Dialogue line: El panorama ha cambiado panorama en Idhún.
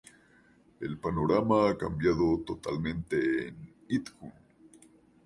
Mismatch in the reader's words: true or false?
true